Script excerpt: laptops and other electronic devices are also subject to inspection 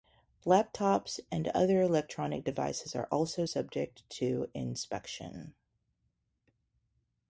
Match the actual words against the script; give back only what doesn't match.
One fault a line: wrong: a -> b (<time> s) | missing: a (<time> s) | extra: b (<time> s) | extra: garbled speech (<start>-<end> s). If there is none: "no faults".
no faults